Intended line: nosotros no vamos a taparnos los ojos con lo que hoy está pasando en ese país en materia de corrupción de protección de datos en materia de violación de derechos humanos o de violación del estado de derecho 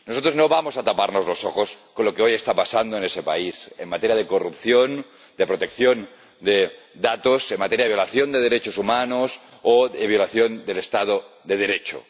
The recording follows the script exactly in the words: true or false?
true